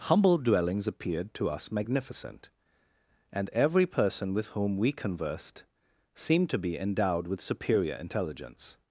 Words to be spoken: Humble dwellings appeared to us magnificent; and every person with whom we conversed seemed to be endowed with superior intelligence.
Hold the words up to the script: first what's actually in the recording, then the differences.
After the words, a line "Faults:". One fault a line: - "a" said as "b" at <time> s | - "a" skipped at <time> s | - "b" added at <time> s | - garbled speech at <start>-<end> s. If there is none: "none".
Humble dwellings appeared to us magnificent; and every person with whom we conversed seemed to be endowed with superior intelligence.
Faults:
none